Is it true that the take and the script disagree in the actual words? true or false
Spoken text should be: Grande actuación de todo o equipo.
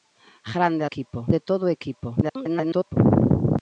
true